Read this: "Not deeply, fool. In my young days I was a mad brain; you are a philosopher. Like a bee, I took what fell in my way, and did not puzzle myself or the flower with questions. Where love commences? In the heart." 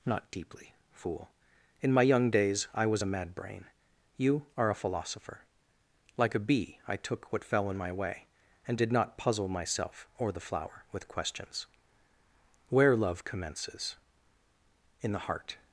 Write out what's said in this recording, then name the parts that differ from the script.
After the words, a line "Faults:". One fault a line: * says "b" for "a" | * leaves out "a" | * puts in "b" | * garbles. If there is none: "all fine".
"Not deeply, fool. In my young days I was a mad brain; you are a philosopher. Like a bee, I took what fell in my way, and did not puzzle myself or the flower with questions. Where love commences? In the heart."
Faults:
all fine